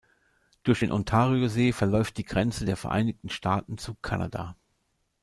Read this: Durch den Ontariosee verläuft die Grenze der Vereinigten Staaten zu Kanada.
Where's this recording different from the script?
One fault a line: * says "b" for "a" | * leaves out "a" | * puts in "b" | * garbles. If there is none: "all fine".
all fine